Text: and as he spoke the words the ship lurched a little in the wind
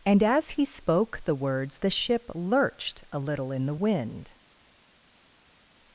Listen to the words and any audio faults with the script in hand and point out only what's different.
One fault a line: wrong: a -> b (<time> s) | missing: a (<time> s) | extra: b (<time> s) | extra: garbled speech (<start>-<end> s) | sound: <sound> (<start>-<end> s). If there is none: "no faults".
no faults